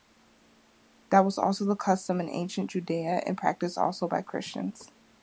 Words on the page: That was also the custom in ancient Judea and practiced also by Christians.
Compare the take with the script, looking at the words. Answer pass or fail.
pass